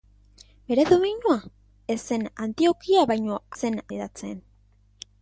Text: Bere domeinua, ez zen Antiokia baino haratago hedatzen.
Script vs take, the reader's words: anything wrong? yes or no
yes